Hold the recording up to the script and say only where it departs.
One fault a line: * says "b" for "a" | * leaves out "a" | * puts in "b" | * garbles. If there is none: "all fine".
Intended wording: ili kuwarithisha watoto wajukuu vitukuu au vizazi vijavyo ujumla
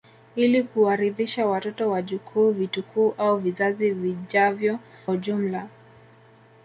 all fine